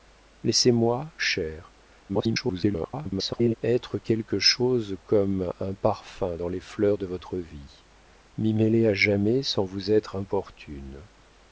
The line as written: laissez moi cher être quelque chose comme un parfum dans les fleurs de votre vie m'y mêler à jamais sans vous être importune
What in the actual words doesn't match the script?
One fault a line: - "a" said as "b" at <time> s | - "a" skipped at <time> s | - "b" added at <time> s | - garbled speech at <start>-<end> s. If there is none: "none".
- garbled speech at 2.1-3.5 s